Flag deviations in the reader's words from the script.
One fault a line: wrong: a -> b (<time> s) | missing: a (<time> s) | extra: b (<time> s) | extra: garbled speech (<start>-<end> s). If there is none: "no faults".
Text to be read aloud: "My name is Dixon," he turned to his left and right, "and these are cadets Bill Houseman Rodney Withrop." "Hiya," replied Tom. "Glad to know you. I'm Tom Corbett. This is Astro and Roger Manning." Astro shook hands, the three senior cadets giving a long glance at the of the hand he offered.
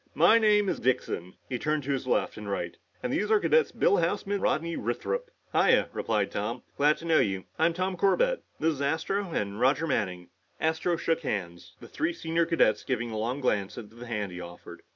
no faults